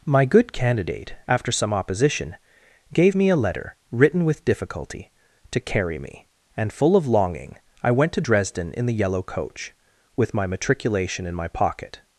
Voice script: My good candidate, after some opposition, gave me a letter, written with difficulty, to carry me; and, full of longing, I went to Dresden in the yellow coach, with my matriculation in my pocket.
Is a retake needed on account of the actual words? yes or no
no